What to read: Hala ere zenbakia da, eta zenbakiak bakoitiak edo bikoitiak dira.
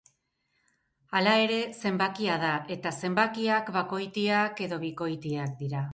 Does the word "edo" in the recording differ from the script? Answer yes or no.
no